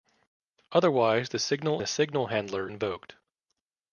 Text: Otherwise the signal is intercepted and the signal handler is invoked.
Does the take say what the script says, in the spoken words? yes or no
no